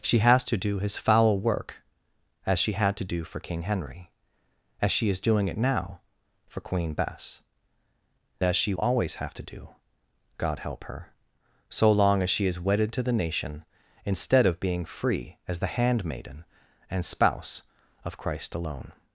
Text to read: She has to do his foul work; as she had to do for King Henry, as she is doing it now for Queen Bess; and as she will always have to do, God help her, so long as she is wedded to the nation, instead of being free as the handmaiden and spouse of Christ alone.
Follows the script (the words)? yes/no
no